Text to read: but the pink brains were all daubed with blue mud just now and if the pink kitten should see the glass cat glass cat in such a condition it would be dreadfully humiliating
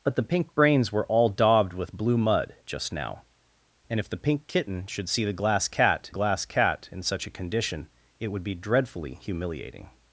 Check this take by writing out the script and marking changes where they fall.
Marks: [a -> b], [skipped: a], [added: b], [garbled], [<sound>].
but the pink brains were all daubed with blue mud just now and if the pink kitten should see the glass cat glass cat in such a condition it would be dreadfully humiliating